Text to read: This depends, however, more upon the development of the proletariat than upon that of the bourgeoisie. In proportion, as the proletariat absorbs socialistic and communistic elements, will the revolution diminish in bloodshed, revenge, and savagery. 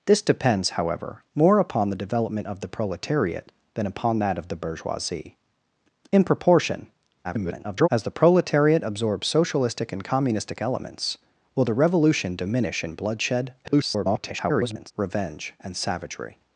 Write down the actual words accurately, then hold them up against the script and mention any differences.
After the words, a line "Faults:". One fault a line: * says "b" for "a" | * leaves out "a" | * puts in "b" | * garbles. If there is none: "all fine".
This depends, however, more upon the development of the proletariat than upon that of the bourgeoisie. In proportion, [garbled] as the proletariat absorbs socialistic and communistic elements, will the revolution diminish in bloodshed, [garbled] revenge, and savagery.
Faults:
* garbles
* garbles